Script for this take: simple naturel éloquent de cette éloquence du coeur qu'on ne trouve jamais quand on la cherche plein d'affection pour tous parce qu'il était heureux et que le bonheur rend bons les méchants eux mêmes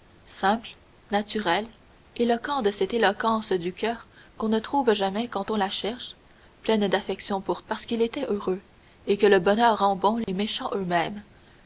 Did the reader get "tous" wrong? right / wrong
wrong